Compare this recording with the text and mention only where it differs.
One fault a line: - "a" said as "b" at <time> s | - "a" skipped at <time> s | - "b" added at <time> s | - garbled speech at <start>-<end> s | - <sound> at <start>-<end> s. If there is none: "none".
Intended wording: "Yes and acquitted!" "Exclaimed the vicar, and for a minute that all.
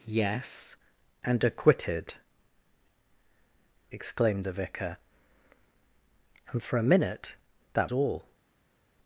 none